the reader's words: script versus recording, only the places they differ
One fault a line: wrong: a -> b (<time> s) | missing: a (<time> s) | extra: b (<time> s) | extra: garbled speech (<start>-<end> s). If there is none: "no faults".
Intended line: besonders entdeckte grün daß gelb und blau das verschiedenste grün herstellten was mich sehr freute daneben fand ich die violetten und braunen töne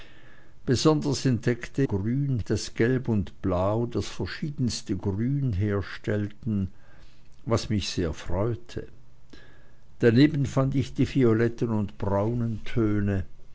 no faults